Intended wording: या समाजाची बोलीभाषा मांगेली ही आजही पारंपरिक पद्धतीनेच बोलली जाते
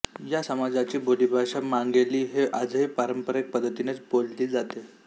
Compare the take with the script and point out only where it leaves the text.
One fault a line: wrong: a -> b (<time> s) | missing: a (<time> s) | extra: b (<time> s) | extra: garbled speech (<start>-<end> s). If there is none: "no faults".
no faults